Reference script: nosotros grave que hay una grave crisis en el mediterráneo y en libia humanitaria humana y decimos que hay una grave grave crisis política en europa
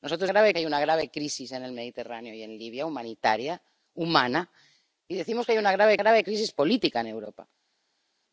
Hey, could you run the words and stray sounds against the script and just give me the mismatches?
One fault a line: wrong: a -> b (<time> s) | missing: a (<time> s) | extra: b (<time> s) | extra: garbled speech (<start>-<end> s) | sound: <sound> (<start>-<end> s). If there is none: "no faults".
no faults